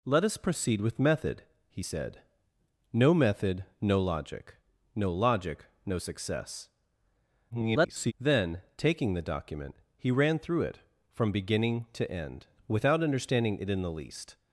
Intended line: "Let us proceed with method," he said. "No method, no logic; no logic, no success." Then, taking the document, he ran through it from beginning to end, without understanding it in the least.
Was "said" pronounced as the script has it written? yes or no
yes